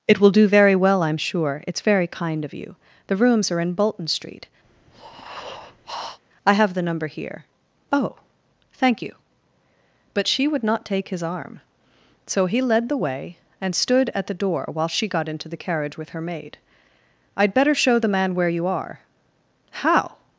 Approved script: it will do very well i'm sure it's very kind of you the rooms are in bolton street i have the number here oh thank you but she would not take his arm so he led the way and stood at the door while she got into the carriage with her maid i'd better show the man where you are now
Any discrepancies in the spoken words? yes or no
yes